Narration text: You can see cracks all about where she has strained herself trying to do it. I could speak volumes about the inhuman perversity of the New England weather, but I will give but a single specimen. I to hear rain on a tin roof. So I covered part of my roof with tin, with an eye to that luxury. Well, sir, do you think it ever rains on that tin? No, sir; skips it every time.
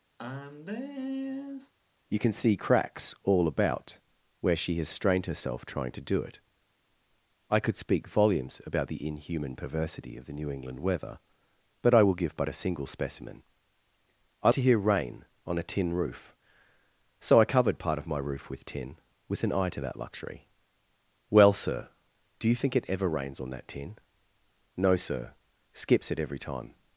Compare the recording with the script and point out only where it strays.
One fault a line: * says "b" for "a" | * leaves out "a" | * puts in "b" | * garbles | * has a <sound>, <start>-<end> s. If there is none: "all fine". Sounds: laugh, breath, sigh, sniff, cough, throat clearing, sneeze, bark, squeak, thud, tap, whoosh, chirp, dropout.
* has a sigh, 0.2-1.7 s